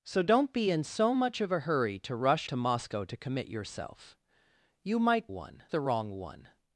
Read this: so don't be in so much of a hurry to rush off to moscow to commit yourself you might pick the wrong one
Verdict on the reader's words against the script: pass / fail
fail